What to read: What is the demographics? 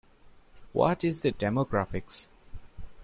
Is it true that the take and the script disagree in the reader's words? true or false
false